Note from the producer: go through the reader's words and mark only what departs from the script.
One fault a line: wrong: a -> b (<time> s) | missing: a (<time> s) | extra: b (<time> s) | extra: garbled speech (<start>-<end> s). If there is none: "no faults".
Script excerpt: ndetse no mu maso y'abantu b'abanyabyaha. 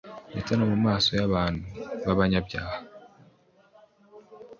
no faults